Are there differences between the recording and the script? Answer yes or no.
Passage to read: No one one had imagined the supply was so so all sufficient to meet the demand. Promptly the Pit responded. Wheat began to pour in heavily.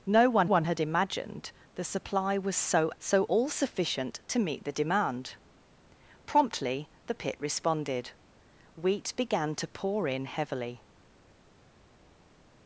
no